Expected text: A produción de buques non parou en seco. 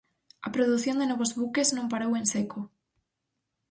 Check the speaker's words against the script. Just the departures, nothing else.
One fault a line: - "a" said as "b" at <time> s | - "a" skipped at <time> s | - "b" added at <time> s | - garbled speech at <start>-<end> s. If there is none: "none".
- "novos" added at 1.1 s